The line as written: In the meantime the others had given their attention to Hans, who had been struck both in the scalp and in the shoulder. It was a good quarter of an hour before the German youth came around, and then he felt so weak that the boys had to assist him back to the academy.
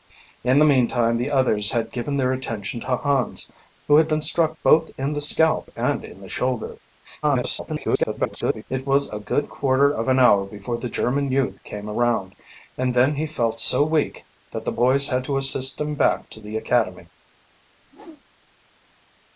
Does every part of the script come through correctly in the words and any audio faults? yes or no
no